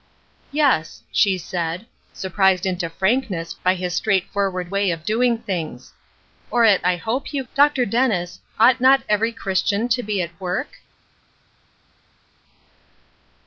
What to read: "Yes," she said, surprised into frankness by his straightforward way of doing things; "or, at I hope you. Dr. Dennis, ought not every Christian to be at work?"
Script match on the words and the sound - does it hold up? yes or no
yes